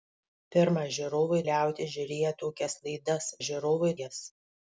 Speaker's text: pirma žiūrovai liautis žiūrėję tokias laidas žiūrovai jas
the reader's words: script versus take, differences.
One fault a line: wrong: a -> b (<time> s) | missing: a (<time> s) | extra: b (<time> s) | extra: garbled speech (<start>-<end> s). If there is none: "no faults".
no faults